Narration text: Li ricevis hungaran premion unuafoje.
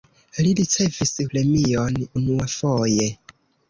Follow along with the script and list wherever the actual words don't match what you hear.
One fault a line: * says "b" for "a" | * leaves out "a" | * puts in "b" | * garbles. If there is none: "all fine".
* leaves out "hungaran"